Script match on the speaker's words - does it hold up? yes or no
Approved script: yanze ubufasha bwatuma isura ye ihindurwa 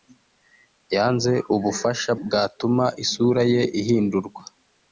yes